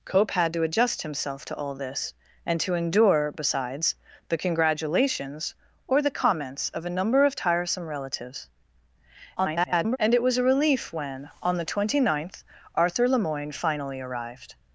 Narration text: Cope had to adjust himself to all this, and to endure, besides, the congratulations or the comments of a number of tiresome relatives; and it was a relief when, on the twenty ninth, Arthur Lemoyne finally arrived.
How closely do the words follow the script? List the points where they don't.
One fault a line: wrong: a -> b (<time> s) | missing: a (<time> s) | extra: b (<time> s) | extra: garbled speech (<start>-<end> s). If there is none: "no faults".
extra: garbled speech (9.4-10.0 s)